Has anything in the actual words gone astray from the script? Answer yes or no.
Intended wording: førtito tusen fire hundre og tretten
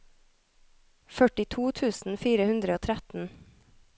no